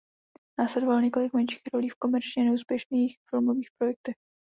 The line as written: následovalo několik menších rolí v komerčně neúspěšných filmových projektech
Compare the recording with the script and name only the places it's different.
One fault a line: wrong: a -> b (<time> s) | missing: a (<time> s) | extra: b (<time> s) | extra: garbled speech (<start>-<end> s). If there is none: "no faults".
no faults